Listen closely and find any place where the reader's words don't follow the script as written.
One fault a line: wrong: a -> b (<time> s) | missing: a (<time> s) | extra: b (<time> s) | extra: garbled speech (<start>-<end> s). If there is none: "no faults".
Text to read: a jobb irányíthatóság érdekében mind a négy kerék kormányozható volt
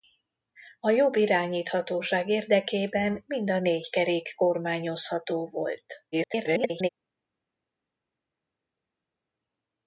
extra: garbled speech (6.1-6.9 s)